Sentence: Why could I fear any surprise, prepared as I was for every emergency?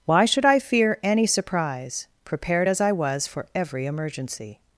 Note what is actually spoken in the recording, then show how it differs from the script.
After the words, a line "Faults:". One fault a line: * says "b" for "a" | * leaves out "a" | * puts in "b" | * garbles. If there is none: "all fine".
Why should I fear any surprise, prepared as I was for every emergency?
Faults:
* says "should" for "could"